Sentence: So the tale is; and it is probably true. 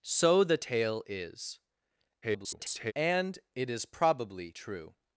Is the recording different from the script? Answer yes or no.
yes